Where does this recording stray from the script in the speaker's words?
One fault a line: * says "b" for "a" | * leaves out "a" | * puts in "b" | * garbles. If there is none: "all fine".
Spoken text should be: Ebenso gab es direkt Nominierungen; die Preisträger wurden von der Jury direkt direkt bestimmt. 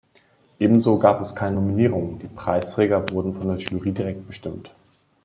* says "keine" for "direkt"
* leaves out "direkt"